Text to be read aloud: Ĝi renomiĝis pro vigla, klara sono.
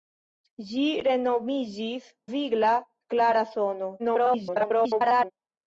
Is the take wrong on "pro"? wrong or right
wrong